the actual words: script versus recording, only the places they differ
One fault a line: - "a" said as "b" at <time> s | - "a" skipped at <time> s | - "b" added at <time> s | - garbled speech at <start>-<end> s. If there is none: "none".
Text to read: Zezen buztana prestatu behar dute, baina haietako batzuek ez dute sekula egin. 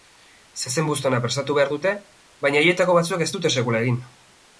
none